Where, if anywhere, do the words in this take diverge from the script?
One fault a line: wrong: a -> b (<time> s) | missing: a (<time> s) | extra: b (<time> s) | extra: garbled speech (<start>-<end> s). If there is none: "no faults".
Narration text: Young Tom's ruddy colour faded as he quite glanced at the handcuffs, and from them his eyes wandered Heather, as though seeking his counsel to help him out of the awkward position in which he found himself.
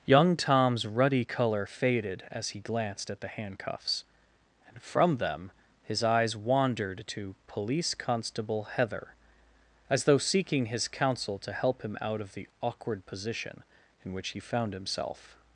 missing: quite (2.6 s)
extra: to Police Constable (7.1 s)